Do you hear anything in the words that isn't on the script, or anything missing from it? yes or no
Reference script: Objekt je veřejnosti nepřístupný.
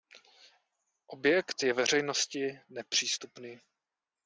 no